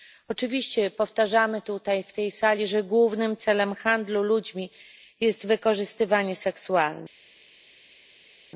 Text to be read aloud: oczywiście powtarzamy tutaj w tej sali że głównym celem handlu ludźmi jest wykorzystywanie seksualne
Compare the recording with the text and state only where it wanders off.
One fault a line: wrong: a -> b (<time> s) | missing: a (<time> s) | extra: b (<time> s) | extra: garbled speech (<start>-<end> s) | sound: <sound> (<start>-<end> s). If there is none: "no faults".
no faults